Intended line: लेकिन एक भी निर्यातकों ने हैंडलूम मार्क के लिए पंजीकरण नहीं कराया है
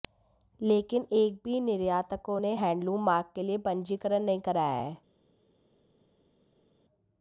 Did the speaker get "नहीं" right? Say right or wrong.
right